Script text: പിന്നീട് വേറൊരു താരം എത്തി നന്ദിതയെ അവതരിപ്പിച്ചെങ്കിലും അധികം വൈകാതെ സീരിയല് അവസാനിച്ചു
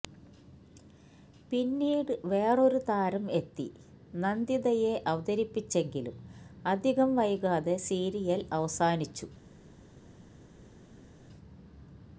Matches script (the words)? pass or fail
pass